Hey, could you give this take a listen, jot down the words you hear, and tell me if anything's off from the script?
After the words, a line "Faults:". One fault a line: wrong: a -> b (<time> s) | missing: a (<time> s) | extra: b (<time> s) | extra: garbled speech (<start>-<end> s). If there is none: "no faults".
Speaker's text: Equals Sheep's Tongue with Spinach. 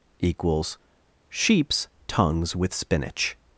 Equals Sheep's Tongues with Spinach.
Faults:
wrong: Tongue -> Tongues (2.1 s)